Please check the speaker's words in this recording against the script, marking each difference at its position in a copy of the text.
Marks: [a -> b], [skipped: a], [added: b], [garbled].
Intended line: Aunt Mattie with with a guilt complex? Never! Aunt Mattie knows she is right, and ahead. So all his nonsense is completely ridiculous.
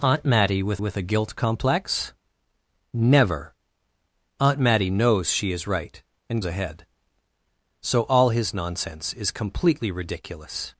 Aunt Mattie with with a guilt complex? Never! Aunt Mattie knows she is right, and ahead. So all his nonsense is completely ridiculous.